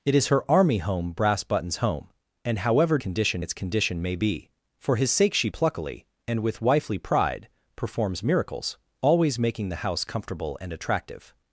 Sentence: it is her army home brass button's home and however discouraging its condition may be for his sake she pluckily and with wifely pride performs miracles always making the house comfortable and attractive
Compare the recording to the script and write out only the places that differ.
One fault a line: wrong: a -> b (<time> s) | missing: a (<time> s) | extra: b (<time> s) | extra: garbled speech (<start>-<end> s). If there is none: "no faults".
wrong: discouraging -> condition (3.0 s)